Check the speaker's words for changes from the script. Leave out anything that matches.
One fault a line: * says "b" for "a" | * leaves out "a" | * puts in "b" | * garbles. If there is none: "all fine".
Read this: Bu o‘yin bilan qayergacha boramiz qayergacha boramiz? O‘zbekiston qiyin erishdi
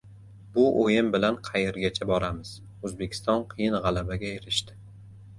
* leaves out "qayergacha boramiz"
* puts in "g‘alabaga"